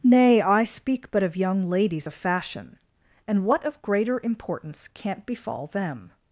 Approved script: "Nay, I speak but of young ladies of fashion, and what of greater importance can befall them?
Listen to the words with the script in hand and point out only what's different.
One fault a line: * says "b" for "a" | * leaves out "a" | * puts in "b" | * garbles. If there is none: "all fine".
* says "can't" for "can"